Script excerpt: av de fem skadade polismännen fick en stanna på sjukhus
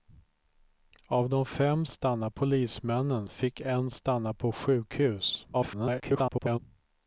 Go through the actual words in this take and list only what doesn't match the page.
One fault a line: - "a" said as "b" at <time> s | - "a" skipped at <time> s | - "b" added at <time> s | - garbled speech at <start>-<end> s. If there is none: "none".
- "skadade" said as "stanna" at 1.9 s
- garbled speech at 5.5-6.6 s